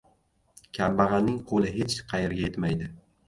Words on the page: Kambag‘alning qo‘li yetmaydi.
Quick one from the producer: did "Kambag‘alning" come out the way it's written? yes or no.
yes